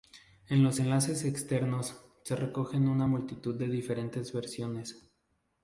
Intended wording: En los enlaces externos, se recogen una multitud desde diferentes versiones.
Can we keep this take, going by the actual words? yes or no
no